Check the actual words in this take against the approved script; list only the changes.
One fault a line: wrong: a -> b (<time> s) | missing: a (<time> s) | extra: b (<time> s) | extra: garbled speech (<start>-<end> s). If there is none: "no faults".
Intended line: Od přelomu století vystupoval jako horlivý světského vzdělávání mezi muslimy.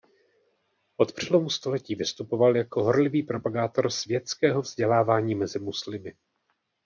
extra: propagátor (3.2 s)